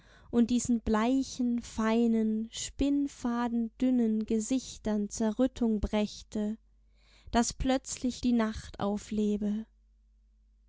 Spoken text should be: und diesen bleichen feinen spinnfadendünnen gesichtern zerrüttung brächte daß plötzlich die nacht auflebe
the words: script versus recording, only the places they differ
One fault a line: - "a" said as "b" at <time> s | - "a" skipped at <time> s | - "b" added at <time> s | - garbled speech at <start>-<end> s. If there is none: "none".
none